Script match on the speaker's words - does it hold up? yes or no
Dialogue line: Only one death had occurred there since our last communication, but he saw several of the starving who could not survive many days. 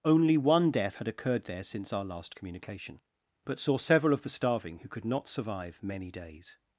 no